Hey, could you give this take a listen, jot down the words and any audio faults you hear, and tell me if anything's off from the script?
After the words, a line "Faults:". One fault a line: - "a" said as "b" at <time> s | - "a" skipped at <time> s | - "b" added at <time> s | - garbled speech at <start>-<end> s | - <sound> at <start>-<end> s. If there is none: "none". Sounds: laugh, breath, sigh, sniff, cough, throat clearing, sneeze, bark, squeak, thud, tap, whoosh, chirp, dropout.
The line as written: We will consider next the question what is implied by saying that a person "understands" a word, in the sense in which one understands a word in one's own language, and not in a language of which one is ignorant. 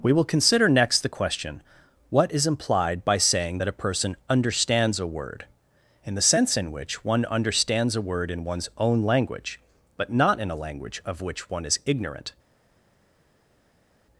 We will consider next the question what is implied by saying that a person "understands" a word, in the sense in which one understands a word in one's own language, but not in a language of which one is ignorant.
Faults:
- "and" said as "but" at 10.0 s